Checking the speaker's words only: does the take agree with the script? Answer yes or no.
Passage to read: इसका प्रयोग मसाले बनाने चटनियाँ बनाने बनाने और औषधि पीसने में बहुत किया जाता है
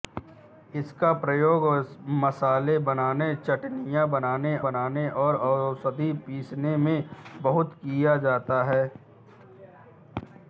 yes